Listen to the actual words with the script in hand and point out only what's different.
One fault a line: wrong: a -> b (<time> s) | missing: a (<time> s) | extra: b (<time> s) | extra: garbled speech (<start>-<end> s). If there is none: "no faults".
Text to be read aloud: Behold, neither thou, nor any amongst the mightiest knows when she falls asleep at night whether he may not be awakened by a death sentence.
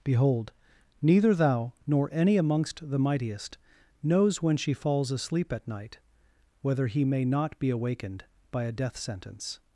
no faults